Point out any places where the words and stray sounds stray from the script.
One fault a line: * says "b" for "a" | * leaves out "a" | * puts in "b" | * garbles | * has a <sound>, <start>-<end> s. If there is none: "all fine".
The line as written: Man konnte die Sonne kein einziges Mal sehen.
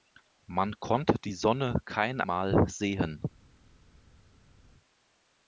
* leaves out "einziges"